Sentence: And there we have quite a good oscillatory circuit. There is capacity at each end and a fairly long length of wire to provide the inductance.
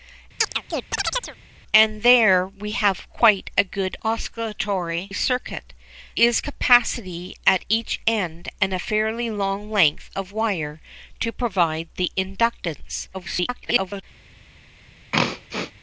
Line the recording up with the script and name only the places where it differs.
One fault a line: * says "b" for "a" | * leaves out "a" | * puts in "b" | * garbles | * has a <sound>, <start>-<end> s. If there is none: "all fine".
* has a chirp, 0.4-1.4 s
* leaves out "There"
* garbles
* has a throat clearing, 15.1-15.7 s